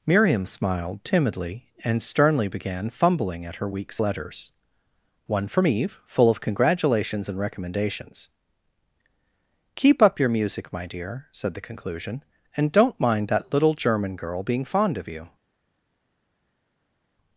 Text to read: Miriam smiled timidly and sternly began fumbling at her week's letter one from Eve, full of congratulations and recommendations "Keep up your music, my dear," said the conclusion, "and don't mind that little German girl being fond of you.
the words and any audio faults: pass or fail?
fail